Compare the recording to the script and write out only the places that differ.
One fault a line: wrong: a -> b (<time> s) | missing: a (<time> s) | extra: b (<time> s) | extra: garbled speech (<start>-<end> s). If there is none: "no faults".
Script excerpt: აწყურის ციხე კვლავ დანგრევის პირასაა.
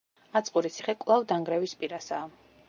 no faults